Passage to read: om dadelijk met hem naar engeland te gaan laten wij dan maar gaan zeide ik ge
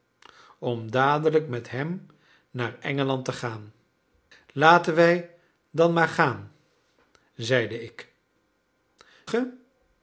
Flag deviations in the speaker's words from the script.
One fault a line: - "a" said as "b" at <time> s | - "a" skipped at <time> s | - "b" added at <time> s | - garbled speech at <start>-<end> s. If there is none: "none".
none